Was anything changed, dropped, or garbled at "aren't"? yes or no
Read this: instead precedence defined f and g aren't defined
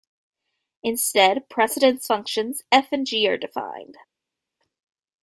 yes